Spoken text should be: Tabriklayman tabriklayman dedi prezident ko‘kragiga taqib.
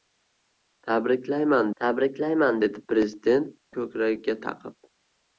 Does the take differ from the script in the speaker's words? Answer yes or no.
no